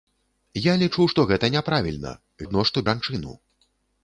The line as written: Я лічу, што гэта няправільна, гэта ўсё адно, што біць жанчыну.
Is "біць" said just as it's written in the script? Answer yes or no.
no